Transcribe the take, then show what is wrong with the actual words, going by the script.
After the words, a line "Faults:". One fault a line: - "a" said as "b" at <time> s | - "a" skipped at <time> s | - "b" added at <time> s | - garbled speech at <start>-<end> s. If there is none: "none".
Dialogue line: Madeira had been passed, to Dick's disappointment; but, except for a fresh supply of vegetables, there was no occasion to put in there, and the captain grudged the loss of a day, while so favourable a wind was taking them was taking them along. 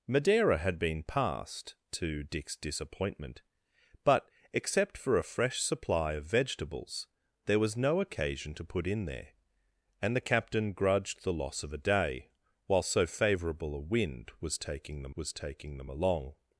Madeira had been passed, to Dick's disappointment; but, except for a fresh supply of vegetables, there was no occasion to put in there, and the captain grudged the loss of a day, while so favourable a wind was taking them was taking them along.
Faults:
none